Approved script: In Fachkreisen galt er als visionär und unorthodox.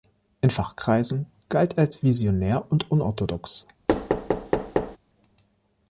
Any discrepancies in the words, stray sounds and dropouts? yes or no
yes